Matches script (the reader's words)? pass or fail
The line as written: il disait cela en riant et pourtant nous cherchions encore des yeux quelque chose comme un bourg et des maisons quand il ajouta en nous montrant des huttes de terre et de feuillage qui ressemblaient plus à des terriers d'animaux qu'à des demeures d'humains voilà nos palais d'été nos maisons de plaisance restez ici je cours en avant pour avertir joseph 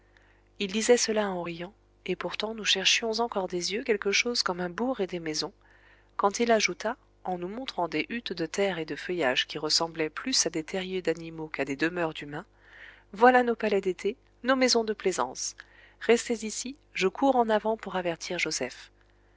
pass